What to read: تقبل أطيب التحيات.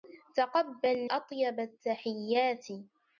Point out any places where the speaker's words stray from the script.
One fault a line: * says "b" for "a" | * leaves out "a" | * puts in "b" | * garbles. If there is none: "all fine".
all fine